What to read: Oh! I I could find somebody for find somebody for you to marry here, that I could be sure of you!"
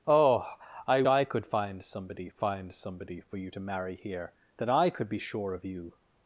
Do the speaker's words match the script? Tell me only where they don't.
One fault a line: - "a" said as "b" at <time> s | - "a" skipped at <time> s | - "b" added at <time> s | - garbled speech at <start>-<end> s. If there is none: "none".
none